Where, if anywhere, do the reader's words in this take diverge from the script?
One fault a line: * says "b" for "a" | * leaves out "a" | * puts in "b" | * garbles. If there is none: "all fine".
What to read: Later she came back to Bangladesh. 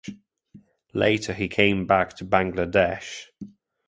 * says "he" for "she"